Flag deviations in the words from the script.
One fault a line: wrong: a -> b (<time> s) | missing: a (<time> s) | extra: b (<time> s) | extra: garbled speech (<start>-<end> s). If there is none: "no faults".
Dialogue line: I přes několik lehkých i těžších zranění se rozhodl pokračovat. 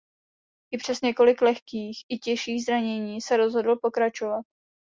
no faults